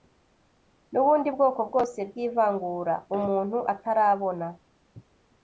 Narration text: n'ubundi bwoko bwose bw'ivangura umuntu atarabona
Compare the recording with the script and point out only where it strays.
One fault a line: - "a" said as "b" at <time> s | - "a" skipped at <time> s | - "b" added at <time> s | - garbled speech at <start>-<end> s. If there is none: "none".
none